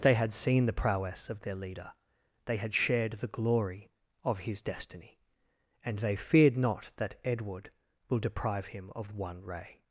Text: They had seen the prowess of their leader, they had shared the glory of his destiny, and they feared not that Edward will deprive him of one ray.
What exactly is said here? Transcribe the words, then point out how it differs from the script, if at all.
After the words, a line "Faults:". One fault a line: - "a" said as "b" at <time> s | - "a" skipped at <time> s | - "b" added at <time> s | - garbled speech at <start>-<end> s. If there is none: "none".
They had seen the prowess of their leader, they had shared the glory of his destiny, and they feared not that Edward will deprive him of one ray.
Faults:
none